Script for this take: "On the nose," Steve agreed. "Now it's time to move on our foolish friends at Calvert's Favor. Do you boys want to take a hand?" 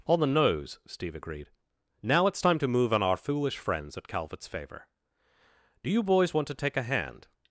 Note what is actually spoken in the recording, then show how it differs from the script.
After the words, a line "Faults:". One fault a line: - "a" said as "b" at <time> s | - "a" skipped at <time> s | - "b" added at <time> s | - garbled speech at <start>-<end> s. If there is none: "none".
"On the nose," Steve agreed. "Now it's time to move on our foolish friends at Calvert's Favor. Do you boys want to take a hand?"
Faults:
none